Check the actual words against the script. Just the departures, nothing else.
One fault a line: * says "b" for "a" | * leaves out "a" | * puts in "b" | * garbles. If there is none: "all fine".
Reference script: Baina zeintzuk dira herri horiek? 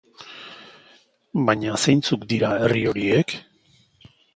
all fine